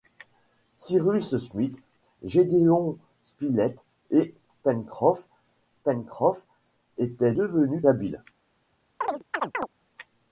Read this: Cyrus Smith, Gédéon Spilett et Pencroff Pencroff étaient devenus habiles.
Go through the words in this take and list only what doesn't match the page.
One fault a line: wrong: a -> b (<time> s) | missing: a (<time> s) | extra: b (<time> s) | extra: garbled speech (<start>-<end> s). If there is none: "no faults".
no faults